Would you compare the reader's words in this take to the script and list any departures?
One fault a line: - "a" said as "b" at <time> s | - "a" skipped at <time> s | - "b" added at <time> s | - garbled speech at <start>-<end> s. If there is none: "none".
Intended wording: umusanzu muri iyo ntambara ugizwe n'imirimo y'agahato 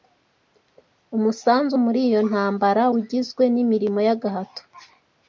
none